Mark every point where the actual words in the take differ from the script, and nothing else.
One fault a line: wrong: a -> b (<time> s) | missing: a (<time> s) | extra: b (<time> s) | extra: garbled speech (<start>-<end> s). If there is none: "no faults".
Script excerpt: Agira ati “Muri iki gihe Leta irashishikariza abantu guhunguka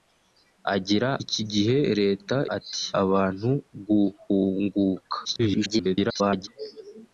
missing: ati Muri (1.1 s)
wrong: irashishikariza -> ati (2.6 s)
extra: garbled speech (5.2-6.5 s)